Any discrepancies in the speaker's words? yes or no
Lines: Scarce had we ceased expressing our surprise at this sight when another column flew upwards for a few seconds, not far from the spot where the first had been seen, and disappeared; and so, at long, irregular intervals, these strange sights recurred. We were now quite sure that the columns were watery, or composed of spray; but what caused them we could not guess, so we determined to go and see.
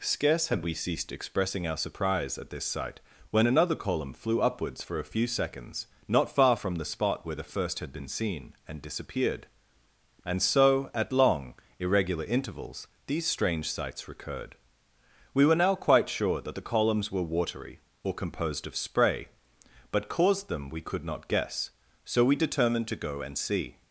yes